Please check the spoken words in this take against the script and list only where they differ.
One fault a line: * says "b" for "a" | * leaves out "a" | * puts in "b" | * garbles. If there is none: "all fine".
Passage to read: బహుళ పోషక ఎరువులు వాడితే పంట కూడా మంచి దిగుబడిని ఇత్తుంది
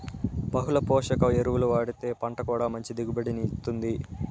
all fine